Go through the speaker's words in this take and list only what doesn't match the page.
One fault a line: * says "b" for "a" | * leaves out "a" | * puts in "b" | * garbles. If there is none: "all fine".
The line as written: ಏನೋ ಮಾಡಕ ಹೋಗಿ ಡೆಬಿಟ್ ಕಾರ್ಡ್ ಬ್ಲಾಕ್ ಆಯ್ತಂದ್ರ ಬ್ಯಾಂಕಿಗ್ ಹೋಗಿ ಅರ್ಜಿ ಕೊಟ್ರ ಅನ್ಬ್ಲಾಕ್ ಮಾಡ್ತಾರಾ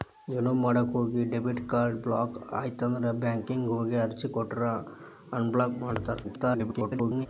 * garbles